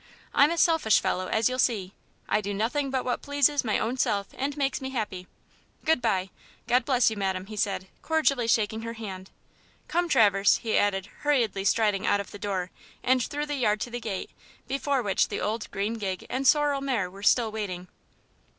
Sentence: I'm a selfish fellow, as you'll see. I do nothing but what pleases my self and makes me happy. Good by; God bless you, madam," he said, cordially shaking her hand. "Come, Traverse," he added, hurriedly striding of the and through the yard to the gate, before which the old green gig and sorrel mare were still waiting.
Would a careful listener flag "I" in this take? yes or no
no